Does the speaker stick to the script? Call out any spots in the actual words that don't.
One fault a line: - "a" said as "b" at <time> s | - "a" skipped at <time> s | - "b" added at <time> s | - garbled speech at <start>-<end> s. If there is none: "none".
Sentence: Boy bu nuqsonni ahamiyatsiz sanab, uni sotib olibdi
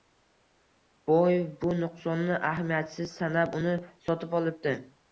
none